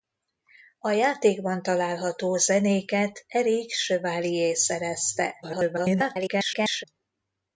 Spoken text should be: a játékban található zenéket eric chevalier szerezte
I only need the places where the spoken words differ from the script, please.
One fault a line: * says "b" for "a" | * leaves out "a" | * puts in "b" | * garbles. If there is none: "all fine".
* garbles